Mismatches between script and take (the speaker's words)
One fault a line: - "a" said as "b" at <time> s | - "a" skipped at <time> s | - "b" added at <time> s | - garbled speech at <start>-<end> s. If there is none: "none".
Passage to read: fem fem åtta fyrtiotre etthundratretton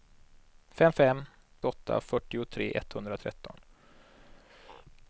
none